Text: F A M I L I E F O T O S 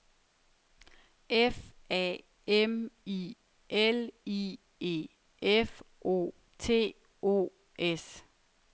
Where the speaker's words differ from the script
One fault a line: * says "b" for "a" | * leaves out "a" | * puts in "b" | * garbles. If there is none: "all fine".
all fine